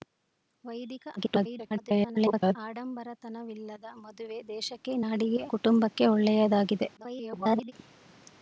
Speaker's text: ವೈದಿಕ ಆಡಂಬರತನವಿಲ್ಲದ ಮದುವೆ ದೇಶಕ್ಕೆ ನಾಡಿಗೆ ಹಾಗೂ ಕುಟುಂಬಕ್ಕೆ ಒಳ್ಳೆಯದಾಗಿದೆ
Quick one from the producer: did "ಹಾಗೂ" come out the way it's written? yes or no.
no